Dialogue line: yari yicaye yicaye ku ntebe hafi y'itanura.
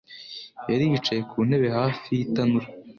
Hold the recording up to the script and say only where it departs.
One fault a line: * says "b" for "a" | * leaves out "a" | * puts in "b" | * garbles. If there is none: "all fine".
* leaves out "yicaye"